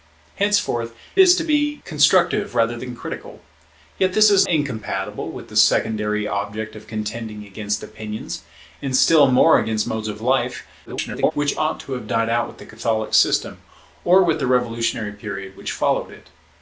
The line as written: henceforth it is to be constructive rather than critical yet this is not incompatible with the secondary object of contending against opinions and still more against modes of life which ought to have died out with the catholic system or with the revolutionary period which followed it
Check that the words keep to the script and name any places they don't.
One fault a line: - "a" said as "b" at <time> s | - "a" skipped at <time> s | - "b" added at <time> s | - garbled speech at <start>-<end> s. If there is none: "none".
- "it" skipped at 0.9 s
- "not" skipped at 4.4 s
- garbled speech at 10.8-11.3 s